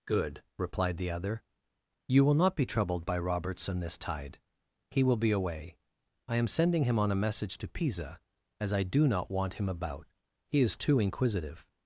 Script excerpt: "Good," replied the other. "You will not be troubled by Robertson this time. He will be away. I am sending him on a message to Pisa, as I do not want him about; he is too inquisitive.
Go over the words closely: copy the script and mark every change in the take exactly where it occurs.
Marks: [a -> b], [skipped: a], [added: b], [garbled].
"Good," replied the other. "You will not be troubled by Robertson this [time. -> tide] He will be away. I am sending him on a message to Pisa, as I do not want him about; he is too inquisitive.